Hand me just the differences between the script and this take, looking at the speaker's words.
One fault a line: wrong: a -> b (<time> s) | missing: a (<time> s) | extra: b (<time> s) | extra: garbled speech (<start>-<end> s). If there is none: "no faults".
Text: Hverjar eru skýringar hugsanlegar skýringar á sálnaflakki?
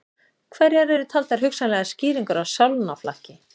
wrong: skýringar -> taldar (1.1 s)